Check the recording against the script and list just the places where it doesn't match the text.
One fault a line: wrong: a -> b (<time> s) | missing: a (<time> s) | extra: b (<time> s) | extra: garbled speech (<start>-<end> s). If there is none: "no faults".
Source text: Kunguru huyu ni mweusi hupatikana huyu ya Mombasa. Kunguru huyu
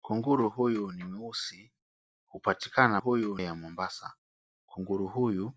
no faults